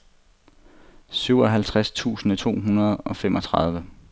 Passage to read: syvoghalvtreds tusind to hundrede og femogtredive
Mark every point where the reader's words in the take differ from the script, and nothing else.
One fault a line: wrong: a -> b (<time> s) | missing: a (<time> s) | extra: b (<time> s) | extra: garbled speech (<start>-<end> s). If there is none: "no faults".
no faults